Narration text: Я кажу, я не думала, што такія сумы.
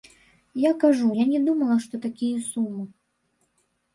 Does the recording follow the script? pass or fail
pass